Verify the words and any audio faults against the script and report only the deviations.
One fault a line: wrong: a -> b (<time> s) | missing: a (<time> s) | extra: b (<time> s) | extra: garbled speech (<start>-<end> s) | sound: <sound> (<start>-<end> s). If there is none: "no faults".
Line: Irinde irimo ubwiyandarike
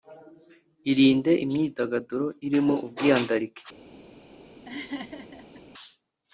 extra: imyidagaduro (1.4 s)
sound: laugh (4.7-5.6 s)